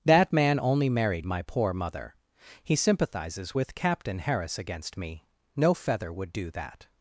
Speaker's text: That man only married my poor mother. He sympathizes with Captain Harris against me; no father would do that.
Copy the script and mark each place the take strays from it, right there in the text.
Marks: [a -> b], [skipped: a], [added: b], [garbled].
That man only married my poor mother. He sympathizes with Captain Harris against me; no [father -> feather] would do that.